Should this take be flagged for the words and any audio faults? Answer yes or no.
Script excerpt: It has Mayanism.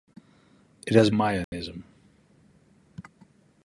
yes